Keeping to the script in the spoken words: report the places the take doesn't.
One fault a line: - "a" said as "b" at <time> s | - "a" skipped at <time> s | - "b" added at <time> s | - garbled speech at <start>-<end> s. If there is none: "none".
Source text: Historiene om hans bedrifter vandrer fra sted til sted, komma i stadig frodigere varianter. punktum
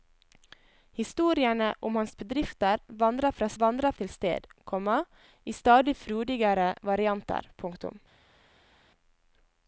- "sted" said as "vandrer" at 3.6 s